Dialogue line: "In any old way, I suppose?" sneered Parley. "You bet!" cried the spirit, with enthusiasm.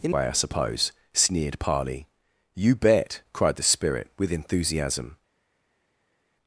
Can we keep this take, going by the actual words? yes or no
no